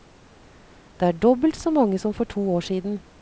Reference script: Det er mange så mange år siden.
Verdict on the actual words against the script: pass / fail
fail